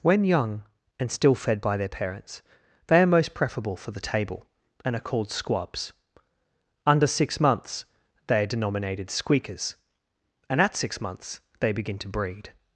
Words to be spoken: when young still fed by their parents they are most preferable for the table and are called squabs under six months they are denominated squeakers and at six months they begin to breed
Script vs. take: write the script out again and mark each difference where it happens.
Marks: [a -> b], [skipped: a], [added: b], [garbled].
when young [added: and] still fed by their parents they are most preferable for the table and are called squabs under six months they are denominated squeakers and at six months they begin to breed